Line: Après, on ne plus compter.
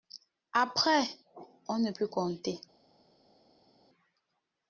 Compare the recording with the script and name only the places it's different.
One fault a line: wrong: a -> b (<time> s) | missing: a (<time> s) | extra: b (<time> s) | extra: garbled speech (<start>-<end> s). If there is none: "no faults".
no faults